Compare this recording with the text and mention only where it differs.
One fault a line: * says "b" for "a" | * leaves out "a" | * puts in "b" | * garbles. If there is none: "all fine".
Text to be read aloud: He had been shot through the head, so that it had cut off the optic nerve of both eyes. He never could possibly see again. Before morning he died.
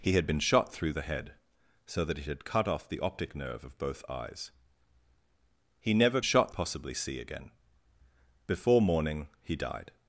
* says "shot" for "could"